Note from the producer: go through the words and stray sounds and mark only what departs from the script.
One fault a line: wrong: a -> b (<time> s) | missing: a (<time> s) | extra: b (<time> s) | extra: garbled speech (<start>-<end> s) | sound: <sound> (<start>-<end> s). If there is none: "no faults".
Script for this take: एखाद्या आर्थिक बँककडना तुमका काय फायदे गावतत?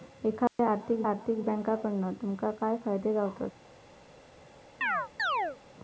sound: dropout (0.5-0.6 s)
extra: आर्थिक (1.0 s)
sound: chirp (4.8-5.6 s)